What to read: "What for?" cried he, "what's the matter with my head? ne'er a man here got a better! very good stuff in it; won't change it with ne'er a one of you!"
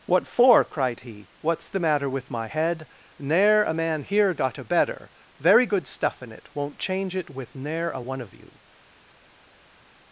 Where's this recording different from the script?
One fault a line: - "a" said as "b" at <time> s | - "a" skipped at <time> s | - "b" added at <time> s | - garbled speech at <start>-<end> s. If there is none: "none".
none